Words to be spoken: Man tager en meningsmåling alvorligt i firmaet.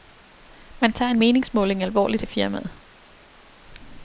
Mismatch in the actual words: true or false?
false